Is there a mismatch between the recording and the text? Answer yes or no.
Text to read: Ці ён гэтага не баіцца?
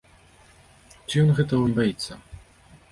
no